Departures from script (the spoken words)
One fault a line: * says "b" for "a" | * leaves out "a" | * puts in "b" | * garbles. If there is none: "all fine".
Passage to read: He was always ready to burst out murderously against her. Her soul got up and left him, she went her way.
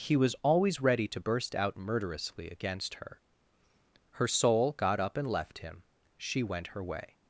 all fine